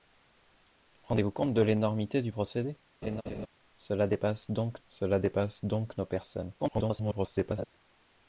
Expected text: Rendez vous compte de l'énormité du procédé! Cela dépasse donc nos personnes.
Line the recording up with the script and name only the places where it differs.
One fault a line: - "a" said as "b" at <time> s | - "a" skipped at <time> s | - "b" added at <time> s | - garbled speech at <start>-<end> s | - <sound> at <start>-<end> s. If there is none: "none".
- laugh at 3.0-3.5 s
- "cela dépasse donc" added at 4.8 s
- garbled speech at 6.6-7.7 s